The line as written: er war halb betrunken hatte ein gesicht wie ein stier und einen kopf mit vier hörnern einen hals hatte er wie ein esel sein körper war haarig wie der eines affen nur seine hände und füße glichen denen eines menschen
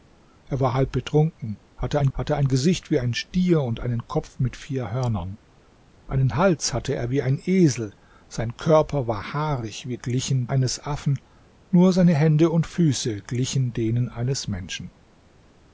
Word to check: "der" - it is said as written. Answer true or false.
false